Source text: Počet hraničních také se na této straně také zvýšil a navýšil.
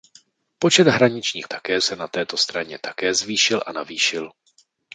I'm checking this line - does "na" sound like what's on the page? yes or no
yes